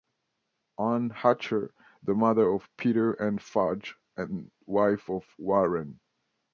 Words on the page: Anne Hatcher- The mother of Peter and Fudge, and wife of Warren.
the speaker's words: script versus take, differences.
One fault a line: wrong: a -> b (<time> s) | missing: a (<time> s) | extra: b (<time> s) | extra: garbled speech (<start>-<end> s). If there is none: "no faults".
no faults